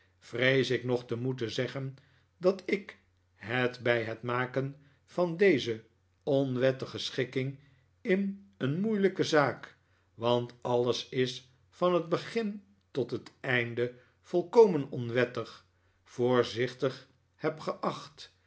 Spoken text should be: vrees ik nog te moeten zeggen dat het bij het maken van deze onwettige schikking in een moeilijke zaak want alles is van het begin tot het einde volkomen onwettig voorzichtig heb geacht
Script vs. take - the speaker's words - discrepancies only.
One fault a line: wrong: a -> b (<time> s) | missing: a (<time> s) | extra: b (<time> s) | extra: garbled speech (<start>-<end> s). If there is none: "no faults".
extra: ik (2.6 s)